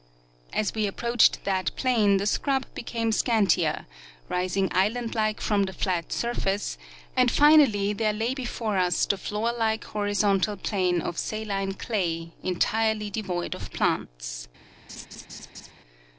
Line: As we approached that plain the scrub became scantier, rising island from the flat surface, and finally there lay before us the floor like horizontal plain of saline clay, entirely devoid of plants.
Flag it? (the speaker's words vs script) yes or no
yes